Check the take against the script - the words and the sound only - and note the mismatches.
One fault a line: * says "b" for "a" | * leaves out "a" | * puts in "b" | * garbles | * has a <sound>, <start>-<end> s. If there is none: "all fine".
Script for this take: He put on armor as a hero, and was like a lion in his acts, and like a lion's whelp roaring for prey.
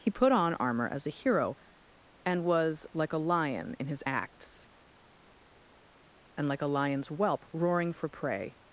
all fine